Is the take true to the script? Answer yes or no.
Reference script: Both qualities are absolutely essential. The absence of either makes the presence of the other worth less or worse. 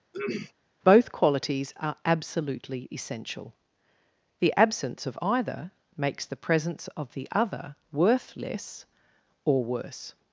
yes